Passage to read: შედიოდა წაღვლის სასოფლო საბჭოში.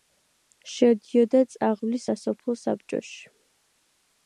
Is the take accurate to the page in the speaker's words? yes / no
yes